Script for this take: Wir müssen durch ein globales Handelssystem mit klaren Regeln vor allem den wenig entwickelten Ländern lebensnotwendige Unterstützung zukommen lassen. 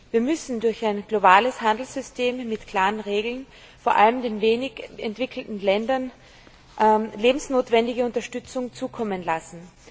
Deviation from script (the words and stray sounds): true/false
false